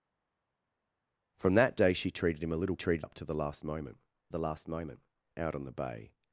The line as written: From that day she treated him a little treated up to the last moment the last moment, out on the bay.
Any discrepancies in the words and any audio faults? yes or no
no